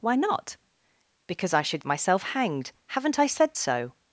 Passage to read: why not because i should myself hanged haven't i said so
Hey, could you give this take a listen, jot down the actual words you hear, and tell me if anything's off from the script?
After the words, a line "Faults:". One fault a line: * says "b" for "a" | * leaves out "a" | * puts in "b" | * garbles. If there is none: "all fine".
why not because i should myself hanged haven't i said so
Faults:
all fine